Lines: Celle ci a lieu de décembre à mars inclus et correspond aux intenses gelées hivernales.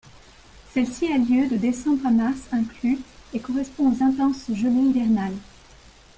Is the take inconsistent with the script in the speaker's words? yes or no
no